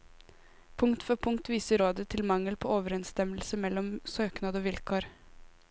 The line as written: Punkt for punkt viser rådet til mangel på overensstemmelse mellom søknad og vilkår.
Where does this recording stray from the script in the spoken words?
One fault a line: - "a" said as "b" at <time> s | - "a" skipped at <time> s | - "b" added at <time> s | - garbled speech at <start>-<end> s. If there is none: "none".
none